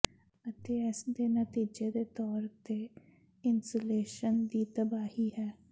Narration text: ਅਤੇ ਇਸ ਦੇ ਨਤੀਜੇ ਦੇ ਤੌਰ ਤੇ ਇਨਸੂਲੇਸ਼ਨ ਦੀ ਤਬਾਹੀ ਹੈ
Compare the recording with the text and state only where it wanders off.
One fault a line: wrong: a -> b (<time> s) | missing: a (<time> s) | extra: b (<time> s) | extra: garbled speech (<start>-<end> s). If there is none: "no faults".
no faults